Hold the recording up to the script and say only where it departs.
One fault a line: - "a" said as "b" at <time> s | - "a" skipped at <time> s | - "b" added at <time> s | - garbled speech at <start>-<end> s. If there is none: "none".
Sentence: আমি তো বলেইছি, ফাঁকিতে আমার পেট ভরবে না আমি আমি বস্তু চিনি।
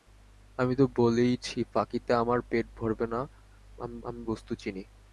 none